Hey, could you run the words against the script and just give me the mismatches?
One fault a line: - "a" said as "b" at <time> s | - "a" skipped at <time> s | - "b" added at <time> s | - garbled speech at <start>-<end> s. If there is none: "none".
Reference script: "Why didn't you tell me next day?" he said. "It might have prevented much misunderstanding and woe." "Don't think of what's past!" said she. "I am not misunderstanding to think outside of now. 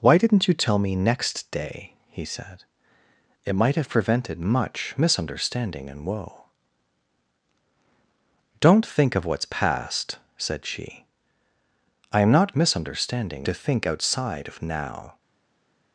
none